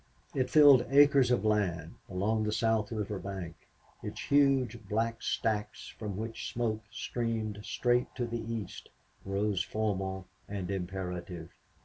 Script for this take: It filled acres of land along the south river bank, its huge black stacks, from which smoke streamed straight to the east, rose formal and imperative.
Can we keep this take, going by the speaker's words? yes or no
yes